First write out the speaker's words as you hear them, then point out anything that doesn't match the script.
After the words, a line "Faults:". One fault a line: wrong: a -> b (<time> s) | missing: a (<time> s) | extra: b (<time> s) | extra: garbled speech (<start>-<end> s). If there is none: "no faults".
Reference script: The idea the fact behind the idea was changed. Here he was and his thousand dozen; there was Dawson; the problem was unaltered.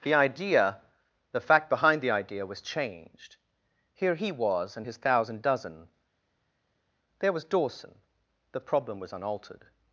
The idea the fact behind the idea was changed. Here he was and his thousand dozen; there was Dawson; the problem was unaltered.
Faults:
no faults